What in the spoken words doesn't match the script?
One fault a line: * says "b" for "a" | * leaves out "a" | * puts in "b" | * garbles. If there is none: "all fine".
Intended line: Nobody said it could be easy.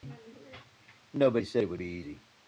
* says "would" for "could"